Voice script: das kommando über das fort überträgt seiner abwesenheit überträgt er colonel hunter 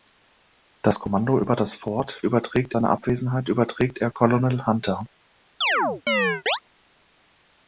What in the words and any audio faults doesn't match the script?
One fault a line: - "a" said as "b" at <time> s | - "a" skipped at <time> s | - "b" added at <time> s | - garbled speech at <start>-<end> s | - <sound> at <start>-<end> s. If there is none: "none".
- chirp at 5.6-6.6 s